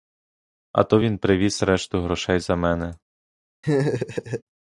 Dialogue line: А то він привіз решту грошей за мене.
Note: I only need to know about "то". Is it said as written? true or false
true